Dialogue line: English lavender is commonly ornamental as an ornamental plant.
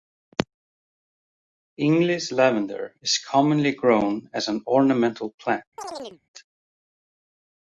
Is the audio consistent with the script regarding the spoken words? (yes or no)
no